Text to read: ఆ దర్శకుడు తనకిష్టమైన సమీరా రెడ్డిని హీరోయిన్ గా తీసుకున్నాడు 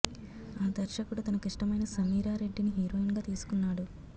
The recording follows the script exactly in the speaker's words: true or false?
true